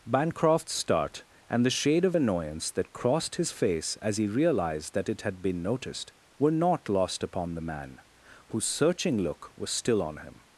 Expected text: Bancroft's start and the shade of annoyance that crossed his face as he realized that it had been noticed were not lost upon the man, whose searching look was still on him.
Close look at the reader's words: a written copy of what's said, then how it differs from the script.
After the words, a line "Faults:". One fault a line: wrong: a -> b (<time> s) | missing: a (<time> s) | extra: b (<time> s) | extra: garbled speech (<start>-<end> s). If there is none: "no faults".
Bancroft's start and the shade of annoyance that crossed his face as he realized that it had been noticed were not lost upon the man, whose searching look was still on him.
Faults:
no faults